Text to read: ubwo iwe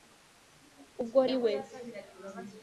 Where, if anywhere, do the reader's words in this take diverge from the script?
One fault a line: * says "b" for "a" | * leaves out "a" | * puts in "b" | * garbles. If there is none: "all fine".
all fine